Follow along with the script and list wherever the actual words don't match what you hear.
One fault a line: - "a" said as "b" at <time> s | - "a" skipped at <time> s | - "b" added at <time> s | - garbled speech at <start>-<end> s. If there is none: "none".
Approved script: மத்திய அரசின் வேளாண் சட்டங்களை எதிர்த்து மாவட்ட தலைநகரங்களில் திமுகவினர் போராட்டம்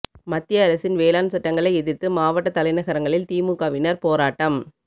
none